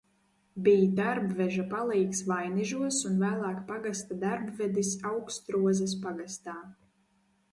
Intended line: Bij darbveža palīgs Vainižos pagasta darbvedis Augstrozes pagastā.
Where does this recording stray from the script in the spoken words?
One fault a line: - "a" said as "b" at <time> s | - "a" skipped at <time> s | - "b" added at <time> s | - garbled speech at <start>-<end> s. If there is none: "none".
- "un vēlāk" added at 3.1 s